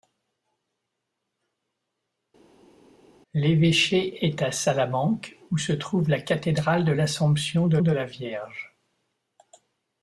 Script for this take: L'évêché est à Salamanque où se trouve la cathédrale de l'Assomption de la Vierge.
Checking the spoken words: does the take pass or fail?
fail